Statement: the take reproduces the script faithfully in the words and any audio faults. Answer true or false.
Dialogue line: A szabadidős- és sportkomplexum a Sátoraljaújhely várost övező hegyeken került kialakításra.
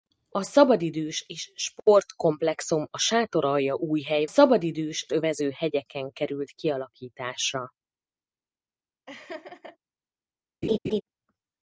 false